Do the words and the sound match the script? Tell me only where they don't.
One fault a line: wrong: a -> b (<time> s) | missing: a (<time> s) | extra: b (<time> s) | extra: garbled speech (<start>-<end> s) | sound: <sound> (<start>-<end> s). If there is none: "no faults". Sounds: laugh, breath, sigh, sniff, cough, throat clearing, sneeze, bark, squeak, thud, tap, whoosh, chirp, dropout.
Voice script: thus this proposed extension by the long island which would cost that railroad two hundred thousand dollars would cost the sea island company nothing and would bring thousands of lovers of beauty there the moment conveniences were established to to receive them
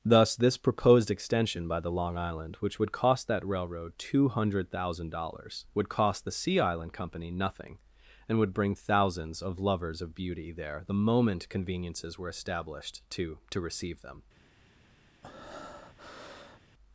sound: breath (15.2-16.6 s)